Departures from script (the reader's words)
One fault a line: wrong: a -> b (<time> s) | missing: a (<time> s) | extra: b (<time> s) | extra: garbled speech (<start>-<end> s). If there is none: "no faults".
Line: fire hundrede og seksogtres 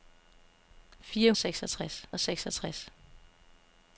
wrong: hundrede -> seksogtres (1.4 s)